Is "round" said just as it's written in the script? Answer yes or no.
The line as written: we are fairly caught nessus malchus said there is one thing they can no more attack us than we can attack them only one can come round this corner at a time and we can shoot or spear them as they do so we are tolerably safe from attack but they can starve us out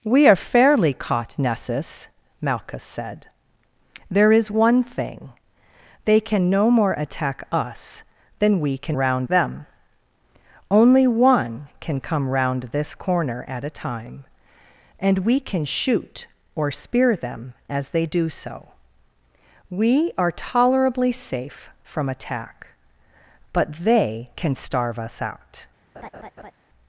yes